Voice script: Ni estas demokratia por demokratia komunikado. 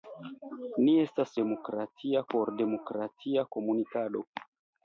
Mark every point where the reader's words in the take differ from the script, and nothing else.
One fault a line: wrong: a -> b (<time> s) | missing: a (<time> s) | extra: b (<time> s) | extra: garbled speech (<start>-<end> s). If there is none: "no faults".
no faults